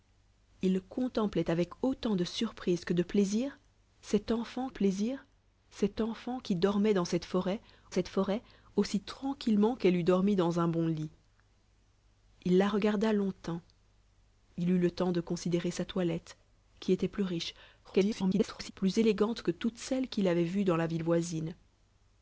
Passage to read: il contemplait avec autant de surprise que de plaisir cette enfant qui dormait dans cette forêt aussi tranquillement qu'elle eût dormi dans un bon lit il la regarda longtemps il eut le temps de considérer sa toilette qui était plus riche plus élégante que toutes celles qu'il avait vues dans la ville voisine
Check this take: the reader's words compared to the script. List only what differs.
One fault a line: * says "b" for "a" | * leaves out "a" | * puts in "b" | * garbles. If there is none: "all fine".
* puts in "plaisir cette enfant"
* puts in "cette forêt"
* garbles